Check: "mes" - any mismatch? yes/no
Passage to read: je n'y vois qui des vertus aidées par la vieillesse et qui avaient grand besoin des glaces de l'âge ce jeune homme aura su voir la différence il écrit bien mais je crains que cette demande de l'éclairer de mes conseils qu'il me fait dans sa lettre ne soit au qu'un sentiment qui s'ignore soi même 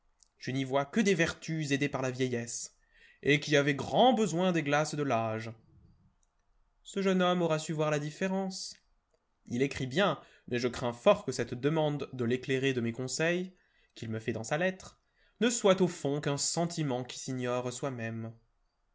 no